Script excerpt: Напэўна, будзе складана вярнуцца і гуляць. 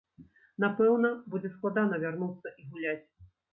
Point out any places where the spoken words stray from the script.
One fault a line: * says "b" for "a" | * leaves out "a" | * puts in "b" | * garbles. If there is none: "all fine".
all fine